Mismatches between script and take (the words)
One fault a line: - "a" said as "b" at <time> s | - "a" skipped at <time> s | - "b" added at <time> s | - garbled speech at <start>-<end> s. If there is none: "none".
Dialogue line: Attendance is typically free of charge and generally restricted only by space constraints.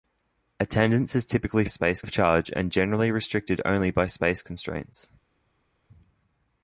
- "free" said as "space" at 1.7 s